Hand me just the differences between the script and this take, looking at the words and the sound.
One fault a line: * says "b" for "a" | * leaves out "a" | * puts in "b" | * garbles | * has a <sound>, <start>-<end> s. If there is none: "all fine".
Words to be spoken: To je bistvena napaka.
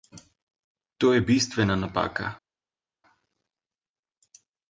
all fine